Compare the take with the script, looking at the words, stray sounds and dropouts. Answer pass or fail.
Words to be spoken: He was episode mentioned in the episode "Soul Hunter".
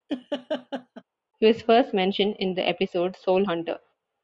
fail